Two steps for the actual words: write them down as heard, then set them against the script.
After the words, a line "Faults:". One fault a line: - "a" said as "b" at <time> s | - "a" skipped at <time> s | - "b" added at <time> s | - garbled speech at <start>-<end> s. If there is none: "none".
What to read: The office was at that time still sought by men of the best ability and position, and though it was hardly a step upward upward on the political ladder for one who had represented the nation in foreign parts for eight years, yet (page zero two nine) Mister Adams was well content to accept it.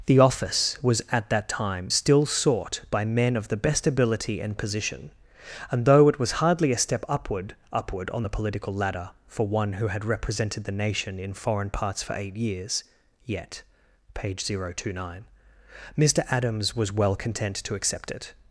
The office was at that time still sought by men of the best ability and position, and though it was hardly a step upward upward on the political ladder for one who had represented the nation in foreign parts for eight years, yet (page zero two nine) Mister Adams was well content to accept it.
Faults:
none